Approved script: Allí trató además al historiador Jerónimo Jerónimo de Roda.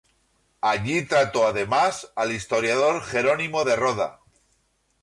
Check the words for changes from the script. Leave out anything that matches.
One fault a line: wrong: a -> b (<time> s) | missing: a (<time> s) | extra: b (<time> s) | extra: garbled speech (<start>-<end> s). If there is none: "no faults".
missing: Jerónimo (3.6 s)